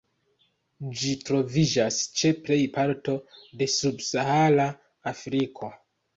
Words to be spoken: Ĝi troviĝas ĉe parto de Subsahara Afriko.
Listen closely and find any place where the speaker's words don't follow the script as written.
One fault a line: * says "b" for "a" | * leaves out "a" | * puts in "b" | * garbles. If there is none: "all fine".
* puts in "plej"